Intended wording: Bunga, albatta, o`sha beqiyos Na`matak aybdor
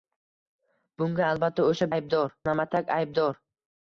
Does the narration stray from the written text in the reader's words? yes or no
yes